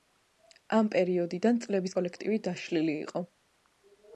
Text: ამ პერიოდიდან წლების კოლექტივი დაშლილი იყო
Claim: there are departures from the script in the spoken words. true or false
false